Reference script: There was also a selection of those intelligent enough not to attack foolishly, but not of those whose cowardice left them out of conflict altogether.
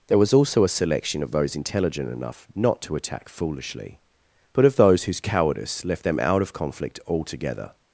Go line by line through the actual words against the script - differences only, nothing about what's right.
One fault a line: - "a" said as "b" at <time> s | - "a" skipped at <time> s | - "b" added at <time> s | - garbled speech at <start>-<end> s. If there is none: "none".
- "not" skipped at 4.7 s